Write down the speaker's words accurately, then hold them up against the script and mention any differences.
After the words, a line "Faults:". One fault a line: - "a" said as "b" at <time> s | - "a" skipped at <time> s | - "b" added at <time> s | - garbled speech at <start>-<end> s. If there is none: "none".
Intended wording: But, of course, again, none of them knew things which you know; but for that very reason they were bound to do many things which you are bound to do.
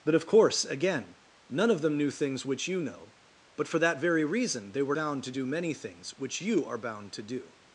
But, of course, again, none of them knew things which you know; but for that very reason they were bound to do many things which you are bound to do.
Faults:
none